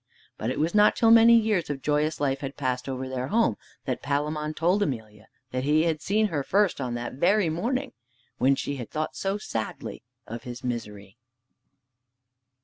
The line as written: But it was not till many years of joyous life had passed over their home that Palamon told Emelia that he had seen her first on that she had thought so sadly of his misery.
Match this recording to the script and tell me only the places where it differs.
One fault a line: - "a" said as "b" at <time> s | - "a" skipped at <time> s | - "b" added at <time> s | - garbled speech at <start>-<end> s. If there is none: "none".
- "very morning when" added at 7.1 s